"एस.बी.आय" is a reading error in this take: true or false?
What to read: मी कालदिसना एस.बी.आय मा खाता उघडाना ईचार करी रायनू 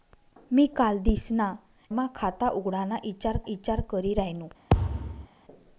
true